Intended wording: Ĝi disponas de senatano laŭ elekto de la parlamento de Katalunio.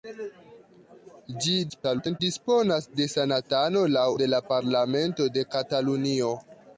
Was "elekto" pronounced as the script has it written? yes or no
no